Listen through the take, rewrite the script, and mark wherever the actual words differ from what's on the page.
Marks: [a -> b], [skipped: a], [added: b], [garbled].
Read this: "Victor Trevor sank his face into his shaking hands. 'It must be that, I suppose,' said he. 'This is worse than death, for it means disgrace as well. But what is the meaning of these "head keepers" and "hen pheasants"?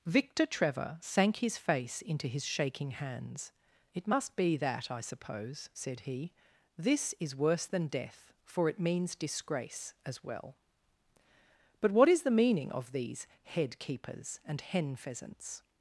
"Victor Trevor sank his face into his shaking hands. 'It must be that, I suppose,' said he. 'This is worse than death, for it means disgrace as well. But what is the meaning of these "head keepers" and "hen pheasants"?